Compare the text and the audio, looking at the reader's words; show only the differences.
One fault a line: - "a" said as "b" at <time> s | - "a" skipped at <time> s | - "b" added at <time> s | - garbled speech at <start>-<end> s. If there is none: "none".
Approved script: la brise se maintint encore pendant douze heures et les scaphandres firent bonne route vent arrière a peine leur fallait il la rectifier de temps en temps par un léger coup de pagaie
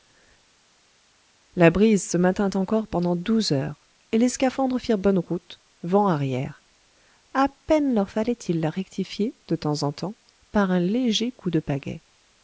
none